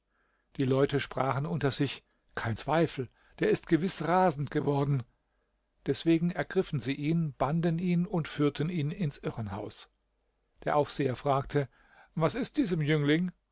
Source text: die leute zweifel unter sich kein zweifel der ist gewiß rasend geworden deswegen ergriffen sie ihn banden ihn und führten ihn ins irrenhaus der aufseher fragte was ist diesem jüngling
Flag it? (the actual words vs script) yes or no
yes